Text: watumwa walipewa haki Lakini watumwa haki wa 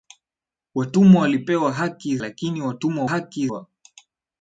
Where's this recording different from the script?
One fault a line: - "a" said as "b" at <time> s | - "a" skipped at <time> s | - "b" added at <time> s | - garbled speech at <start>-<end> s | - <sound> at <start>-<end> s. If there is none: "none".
none